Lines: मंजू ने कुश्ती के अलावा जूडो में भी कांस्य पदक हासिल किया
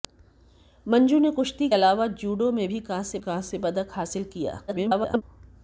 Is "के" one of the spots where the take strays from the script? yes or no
yes